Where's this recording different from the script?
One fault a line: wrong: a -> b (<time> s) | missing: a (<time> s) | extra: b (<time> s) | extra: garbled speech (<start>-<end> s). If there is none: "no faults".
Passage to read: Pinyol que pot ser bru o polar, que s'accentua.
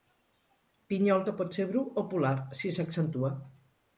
wrong: que -> si (2.6 s)